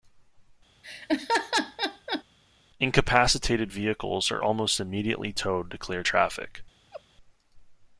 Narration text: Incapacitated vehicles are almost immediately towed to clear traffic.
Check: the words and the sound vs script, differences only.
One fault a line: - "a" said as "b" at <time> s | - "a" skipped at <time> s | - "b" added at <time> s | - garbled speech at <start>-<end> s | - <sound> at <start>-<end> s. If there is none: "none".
- laugh at 0.8-2.2 s
- laugh at 6.9-7.0 s